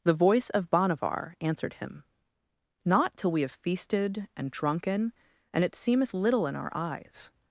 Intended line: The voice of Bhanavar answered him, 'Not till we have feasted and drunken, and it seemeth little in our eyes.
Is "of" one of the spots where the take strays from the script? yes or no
no